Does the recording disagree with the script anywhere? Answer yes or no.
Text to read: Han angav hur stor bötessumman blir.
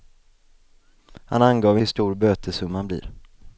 no